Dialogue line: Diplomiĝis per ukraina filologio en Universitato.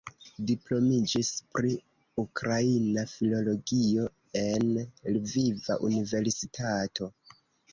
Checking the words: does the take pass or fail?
fail